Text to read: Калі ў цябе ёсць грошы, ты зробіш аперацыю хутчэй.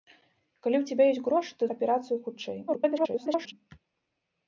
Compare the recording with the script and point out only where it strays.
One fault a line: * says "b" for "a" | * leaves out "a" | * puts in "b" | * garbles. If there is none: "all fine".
* leaves out "зробіш"
* garbles